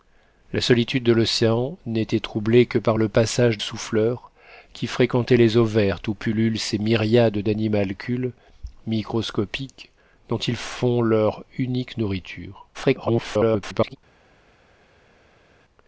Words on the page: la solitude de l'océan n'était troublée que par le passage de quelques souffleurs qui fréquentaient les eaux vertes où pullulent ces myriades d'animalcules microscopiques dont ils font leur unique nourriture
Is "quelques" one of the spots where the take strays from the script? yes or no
yes